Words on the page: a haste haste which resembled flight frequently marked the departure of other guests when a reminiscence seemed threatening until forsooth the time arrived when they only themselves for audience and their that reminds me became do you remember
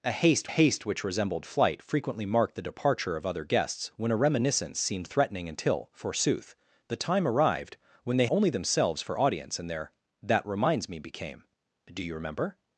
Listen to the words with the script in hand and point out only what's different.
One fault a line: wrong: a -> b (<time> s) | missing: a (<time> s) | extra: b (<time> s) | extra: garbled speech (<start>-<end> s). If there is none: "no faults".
no faults